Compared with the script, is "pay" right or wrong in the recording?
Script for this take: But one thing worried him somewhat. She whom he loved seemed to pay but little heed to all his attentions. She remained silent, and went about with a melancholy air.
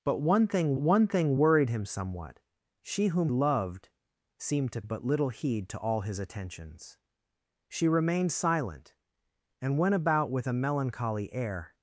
wrong